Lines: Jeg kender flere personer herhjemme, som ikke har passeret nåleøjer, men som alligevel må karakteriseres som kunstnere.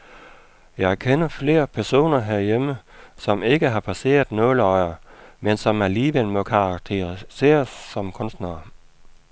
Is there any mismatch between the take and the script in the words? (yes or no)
no